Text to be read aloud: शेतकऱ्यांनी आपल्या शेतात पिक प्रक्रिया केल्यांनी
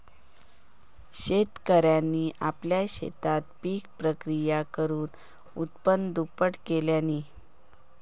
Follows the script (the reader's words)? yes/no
no